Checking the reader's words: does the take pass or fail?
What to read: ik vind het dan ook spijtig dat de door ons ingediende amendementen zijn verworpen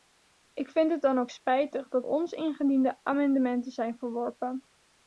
fail